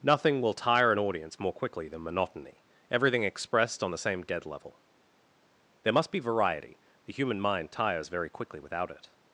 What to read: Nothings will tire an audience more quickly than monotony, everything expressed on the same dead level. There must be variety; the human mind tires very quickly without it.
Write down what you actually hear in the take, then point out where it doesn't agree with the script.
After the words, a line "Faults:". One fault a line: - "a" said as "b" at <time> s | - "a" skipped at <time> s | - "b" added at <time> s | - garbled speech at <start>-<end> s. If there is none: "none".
Nothing will tire an audience more quickly than monotony, everything expressed on the same dead level. There must be variety; the human mind tires very quickly without it.
Faults:
- "Nothings" said as "Nothing" at 0.0 s